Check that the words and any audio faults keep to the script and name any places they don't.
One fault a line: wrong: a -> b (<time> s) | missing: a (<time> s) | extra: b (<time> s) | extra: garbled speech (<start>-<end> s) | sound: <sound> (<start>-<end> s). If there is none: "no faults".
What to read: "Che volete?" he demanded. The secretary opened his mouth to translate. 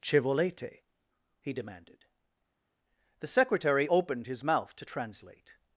no faults